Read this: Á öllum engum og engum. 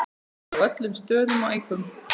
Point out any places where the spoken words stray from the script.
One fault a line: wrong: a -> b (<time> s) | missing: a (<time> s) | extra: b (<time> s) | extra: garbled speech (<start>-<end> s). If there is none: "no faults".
wrong: engum -> stöðum (1.0 s)